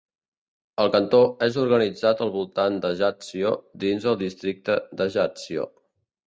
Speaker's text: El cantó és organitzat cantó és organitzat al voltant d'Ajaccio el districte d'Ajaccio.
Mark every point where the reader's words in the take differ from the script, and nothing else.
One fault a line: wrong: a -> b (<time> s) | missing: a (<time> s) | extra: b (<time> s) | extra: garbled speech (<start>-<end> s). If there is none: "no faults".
missing: cantó és organitzat (2.2 s)
extra: dins (3.9 s)